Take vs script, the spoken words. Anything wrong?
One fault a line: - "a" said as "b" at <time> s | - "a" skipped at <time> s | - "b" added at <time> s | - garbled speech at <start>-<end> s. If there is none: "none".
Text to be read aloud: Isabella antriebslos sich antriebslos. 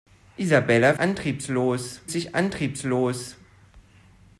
none